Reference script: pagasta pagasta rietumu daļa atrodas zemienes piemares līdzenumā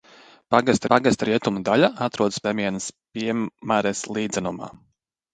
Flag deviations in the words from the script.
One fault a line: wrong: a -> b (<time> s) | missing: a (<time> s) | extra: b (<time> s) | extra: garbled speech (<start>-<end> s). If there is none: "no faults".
no faults